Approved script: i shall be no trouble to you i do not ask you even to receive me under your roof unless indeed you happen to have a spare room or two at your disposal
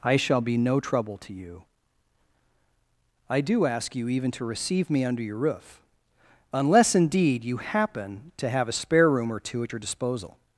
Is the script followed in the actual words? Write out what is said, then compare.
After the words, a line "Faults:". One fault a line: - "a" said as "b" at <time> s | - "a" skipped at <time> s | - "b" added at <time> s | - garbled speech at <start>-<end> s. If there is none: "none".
i shall be no trouble to you i do ask you even to receive me under your roof unless indeed you happen to have a spare room or two at your disposal
Faults:
- "not" skipped at 3.6 s